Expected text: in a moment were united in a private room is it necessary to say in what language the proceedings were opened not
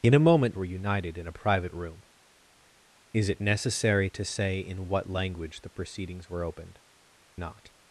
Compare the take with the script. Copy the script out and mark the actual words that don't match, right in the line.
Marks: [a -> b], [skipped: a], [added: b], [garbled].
in a moment were united in a private room is it necessary to say in what language the proceedings were opened not